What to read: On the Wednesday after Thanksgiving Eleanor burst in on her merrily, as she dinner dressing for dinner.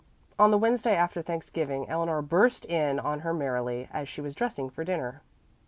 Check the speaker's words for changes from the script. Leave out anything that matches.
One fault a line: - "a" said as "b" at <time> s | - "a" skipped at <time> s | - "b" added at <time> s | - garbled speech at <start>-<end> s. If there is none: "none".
- "dinner" said as "was" at 4.2 s